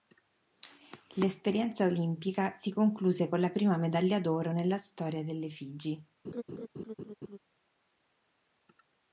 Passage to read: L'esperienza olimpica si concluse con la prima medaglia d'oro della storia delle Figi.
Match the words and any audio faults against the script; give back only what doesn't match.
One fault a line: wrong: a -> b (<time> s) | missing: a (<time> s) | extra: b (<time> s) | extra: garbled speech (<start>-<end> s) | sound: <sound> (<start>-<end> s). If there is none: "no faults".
wrong: della -> nella (4.5 s)
sound: laugh (6.2-7.4 s)